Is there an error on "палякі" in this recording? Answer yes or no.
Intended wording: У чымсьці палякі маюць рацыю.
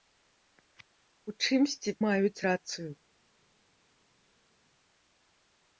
yes